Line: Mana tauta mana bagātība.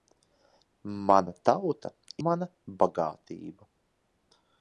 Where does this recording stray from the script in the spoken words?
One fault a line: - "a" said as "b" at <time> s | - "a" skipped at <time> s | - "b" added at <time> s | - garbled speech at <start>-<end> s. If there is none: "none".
none